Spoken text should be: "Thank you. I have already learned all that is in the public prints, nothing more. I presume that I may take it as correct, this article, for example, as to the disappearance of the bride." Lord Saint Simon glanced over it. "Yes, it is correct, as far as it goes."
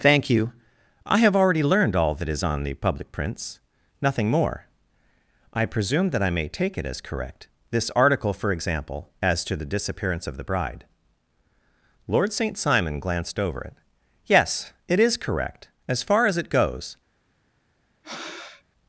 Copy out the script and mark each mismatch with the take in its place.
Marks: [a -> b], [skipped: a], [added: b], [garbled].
"Thank you. I have already learned all that is [in -> on] the public prints, nothing more. I presume that I may take it as correct, this article, for example, as to the disappearance of the bride." Lord Saint Simon glanced over it. "Yes, it is correct, as far as it goes."